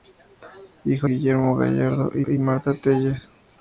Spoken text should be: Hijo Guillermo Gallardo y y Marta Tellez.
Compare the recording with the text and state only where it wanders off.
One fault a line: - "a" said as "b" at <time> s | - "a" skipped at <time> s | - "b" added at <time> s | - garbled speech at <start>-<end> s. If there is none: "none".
none